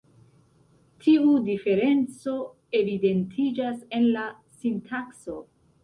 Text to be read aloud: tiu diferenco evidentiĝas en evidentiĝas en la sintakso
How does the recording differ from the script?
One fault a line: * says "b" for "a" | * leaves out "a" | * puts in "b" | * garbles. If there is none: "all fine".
* leaves out "evidentiĝas en"